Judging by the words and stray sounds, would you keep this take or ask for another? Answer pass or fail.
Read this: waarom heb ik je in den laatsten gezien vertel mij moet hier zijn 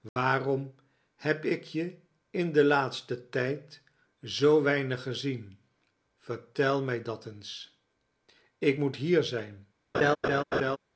fail